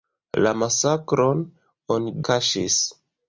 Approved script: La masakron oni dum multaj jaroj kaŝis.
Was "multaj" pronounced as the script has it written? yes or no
no